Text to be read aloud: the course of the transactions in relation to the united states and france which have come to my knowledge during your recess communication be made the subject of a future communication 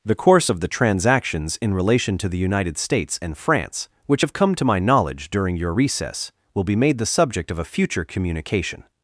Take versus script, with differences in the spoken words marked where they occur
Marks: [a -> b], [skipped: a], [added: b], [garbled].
the course of the transactions in relation to the united states and france which have come to my knowledge during your recess [communication -> will] be made the subject of a future communication